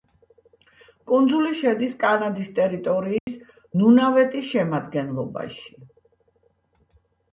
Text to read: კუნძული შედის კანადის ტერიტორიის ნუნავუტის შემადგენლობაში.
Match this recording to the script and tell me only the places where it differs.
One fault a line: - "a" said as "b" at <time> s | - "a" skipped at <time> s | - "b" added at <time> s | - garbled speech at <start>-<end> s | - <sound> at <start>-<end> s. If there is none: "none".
- dropout at 3.2-3.3 s